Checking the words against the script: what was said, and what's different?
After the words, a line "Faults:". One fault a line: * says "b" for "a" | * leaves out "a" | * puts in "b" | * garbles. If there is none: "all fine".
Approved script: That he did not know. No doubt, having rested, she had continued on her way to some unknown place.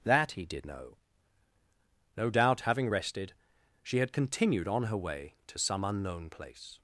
That he did know. No doubt, having rested, she had continued on her way to some unknown place.
Faults:
* leaves out "not"